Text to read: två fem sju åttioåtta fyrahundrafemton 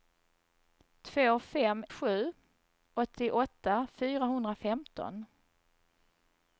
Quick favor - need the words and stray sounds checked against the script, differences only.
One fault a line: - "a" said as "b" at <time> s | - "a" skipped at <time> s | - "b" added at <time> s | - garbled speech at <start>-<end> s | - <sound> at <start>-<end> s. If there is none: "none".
none